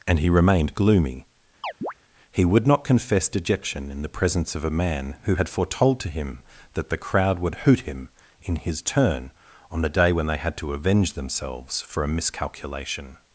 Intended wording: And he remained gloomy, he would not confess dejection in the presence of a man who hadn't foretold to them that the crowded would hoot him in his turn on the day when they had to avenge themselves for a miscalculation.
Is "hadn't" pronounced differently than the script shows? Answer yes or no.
yes